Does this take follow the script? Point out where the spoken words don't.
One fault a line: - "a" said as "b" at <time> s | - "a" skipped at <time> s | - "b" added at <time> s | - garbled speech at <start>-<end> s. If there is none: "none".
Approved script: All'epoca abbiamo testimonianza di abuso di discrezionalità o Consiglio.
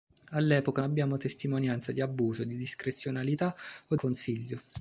none